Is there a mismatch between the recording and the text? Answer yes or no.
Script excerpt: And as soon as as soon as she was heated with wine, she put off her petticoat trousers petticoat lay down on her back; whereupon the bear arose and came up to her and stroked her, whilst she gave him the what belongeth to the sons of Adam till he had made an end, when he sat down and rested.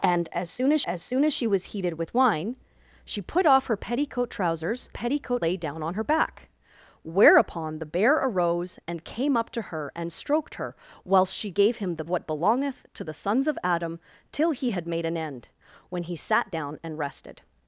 no